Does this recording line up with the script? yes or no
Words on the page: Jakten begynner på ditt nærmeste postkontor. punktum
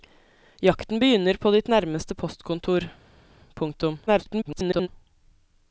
no